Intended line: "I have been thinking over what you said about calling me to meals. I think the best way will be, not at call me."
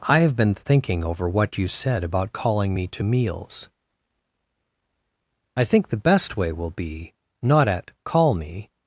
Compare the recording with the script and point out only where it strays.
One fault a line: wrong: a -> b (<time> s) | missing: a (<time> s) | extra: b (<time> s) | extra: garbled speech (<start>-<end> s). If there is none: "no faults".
no faults